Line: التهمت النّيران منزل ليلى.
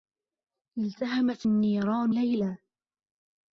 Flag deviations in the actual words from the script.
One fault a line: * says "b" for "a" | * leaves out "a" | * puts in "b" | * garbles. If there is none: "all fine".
* leaves out "منزل"